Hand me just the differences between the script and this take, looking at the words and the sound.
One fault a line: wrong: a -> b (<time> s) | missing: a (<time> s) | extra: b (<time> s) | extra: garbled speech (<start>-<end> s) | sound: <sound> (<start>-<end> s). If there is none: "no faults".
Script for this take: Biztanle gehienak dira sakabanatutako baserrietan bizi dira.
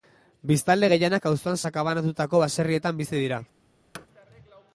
wrong: dira -> auzoan (1.3 s)
sound: thud (3.9-4.1 s)